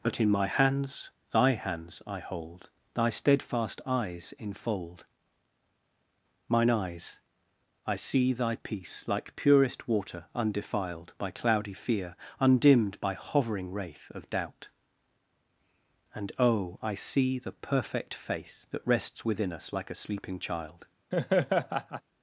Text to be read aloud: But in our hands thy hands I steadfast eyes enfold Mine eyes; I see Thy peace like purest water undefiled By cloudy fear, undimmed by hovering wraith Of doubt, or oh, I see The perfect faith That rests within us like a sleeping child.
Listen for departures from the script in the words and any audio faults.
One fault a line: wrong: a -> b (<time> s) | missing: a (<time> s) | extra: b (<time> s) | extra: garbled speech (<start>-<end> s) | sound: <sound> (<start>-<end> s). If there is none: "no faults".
wrong: our -> my (0.3 s)
extra: hold Thy (2.2 s)
wrong: or -> and (16.1 s)
sound: laugh (21.1-22.0 s)